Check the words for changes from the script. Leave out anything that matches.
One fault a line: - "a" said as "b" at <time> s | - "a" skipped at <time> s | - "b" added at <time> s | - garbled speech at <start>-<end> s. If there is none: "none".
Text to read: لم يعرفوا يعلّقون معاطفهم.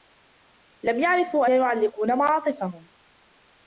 none